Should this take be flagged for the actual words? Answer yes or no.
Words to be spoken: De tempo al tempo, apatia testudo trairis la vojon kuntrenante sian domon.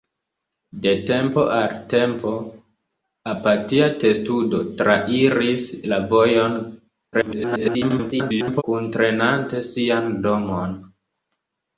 yes